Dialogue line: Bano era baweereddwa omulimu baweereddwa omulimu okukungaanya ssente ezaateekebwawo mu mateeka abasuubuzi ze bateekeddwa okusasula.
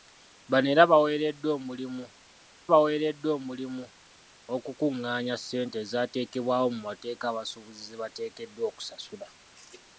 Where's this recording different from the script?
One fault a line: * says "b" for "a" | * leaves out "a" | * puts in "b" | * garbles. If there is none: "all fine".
all fine